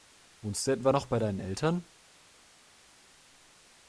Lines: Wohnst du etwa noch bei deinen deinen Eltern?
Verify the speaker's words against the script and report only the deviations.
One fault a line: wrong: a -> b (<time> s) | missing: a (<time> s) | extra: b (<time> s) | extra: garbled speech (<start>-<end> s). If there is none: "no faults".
missing: deinen (1.4 s)